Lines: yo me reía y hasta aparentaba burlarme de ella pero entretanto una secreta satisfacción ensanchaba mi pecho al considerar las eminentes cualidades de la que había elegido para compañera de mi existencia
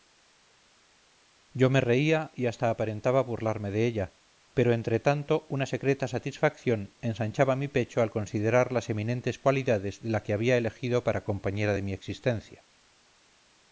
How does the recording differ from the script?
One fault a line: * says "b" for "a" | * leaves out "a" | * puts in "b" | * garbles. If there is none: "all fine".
all fine